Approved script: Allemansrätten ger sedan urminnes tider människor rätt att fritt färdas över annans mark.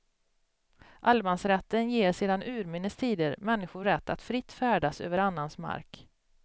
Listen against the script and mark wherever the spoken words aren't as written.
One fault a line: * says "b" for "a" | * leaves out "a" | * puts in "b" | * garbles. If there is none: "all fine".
all fine